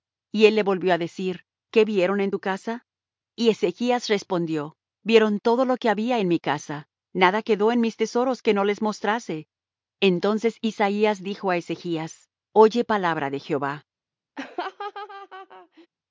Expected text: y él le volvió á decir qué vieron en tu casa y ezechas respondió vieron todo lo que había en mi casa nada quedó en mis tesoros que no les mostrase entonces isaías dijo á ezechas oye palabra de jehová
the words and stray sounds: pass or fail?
fail